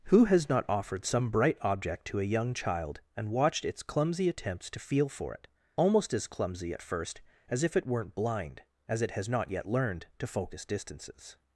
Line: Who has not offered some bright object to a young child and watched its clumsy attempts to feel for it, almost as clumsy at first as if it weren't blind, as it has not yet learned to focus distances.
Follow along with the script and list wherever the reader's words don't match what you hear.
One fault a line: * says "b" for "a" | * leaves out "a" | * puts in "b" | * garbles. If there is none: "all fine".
all fine